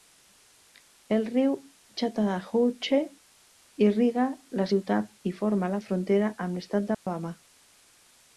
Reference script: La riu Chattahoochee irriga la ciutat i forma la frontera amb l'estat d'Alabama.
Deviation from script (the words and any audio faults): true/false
true